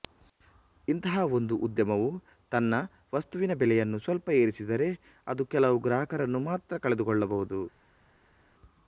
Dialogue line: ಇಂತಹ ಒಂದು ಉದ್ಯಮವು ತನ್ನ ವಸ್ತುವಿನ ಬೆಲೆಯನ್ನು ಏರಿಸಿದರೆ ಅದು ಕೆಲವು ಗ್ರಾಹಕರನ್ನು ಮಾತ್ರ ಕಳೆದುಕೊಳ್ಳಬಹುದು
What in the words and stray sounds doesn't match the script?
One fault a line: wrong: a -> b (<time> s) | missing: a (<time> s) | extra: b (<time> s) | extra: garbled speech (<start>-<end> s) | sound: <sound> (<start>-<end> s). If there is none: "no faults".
extra: ಸ್ವಲ್ಪ (4.0 s)